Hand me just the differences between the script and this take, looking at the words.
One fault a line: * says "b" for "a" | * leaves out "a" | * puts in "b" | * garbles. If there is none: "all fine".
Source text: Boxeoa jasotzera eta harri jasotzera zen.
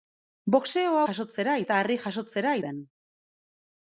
all fine